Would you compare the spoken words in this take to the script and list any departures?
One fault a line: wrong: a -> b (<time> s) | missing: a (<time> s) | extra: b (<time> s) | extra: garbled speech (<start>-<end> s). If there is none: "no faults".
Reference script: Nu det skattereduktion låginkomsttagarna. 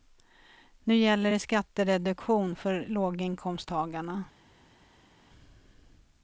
extra: gäller (0.9 s)
extra: för (2.5 s)